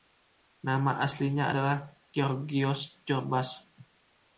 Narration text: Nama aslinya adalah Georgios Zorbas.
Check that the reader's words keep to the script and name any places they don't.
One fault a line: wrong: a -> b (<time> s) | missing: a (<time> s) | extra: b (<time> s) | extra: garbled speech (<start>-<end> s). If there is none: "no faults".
no faults